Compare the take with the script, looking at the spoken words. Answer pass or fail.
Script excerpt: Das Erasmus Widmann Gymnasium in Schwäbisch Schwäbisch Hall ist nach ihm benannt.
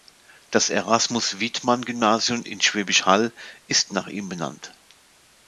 fail